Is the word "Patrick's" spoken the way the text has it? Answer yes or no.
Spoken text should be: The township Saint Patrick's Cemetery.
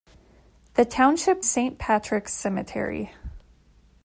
yes